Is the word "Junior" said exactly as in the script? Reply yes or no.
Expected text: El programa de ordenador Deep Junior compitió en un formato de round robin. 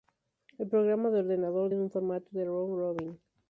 no